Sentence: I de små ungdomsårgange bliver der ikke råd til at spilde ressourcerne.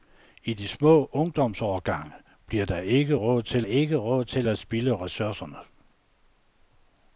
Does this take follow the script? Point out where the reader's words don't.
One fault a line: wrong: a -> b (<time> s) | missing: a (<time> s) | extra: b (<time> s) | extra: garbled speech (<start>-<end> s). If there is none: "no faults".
extra: ikke råd til (3.6 s)